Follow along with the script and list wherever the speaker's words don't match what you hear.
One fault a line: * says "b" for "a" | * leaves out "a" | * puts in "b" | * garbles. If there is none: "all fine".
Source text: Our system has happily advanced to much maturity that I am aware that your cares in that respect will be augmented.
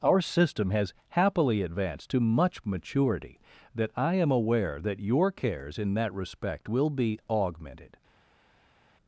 all fine